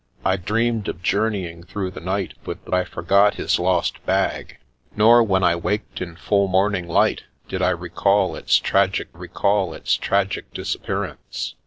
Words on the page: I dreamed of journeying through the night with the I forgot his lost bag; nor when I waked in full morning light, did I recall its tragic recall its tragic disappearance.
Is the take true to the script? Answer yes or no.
yes